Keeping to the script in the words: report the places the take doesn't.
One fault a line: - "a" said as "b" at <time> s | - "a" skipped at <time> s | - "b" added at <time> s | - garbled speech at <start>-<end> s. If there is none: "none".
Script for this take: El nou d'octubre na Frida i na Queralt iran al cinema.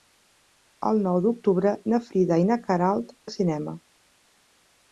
- "iran" skipped at 3.1 s